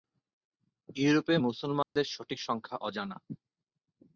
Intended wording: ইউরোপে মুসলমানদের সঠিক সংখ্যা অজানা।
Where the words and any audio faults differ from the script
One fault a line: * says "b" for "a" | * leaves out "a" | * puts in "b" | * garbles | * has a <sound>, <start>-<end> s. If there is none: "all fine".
* has a dropout, 1.8-2.0 s